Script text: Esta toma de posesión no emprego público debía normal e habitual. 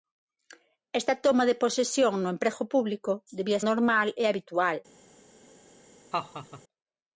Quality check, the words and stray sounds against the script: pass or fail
fail